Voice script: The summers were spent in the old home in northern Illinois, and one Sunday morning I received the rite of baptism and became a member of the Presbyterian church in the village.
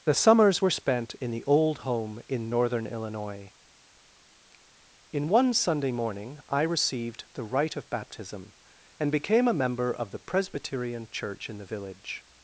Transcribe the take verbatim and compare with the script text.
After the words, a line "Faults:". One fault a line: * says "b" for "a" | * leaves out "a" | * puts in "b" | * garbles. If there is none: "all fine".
The summers were spent in the old home in northern Illinois, in one Sunday morning I received the rite of baptism and became a member of the Presbyterian church in the village.
Faults:
* says "in" for "and"